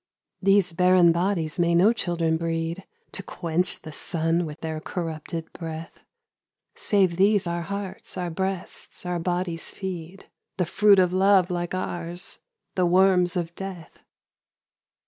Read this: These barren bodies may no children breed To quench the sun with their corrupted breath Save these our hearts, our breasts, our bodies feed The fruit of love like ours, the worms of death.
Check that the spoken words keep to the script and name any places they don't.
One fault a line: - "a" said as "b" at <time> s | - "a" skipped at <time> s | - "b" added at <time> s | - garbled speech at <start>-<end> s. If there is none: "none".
none